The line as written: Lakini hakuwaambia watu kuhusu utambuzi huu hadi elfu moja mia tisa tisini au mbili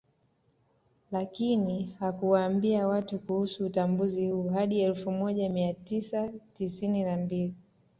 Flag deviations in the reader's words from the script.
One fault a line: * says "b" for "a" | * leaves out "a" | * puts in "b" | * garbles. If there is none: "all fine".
* says "na" for "au"